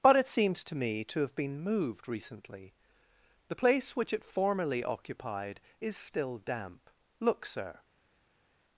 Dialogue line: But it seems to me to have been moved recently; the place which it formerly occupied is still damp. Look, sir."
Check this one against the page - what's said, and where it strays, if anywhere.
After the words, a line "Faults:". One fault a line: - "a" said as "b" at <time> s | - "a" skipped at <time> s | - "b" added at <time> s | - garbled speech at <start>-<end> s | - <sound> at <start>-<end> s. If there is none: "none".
But it seems to me to have been moved recently; the place which it formerly occupied is still damp. Look, sir."
Faults:
none